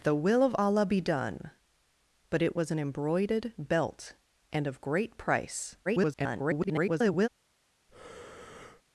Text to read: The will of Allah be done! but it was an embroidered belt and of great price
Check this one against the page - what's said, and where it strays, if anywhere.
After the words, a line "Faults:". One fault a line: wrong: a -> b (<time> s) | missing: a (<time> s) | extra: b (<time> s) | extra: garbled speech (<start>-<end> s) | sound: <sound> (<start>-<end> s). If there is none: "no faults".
The will of Allah be done! but it was an embroidered belt and of great price [garbled]
Faults:
extra: garbled speech (5.8-7.3 s)
sound: breath (7.9-8.8 s)